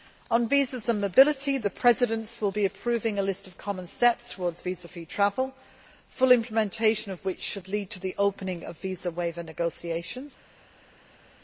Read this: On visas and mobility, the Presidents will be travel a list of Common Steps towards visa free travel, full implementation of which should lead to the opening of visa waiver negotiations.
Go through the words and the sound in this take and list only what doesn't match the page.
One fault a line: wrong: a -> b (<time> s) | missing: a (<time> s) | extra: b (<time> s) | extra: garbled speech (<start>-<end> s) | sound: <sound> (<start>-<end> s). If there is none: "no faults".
wrong: travel -> approving (2.6 s)